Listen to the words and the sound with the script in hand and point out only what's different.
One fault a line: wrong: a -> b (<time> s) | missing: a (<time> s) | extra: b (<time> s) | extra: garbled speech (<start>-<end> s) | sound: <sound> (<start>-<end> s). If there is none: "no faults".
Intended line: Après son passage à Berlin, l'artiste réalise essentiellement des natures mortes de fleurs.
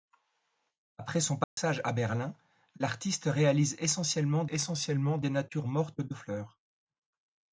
sound: dropout (1.4-1.6 s)
extra: essentiellement (4.5 s)